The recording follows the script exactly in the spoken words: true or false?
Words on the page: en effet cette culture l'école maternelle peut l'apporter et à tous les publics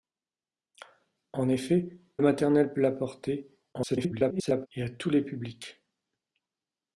false